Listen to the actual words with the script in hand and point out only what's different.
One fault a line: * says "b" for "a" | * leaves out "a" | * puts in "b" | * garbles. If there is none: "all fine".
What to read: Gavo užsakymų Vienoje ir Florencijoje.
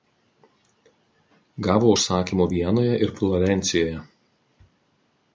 all fine